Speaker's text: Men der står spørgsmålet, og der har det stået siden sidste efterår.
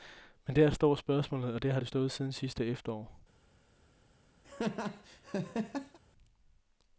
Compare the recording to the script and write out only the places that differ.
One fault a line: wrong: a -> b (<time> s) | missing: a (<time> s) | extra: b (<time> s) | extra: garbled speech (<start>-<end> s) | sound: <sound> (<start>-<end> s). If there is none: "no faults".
sound: laugh (4.4-6.0 s)